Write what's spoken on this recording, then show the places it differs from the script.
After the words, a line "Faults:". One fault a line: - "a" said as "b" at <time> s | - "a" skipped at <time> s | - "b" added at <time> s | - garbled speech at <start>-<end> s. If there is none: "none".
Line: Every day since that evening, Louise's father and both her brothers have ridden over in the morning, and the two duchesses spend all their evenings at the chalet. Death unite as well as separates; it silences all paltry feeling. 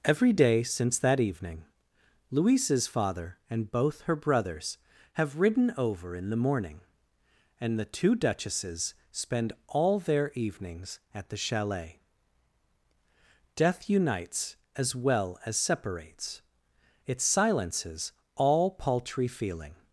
Every day since that evening, Louise's father and both her brothers have ridden over in the morning, and the two duchesses spend all their evenings at the chalet. Death unites as well as separates; it silences all paltry feeling.
Faults:
- "unite" said as "unites" at 13.9 s